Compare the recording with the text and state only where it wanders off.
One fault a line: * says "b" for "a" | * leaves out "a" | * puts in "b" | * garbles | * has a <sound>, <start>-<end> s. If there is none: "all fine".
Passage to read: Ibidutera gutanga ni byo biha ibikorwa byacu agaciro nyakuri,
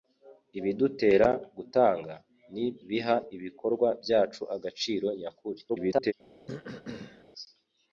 * leaves out "byo"
* garbles
* has a throat clearing, 6.5-7.2 s